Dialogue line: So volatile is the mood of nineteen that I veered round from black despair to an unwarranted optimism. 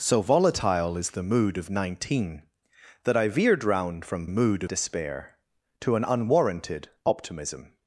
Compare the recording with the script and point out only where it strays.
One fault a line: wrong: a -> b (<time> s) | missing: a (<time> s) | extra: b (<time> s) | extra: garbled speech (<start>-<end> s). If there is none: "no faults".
wrong: black -> mood (4.3 s)